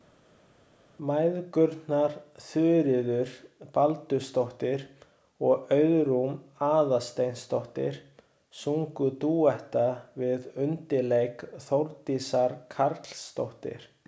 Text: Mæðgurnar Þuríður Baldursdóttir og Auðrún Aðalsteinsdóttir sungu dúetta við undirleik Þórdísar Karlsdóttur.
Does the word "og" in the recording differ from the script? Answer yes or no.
no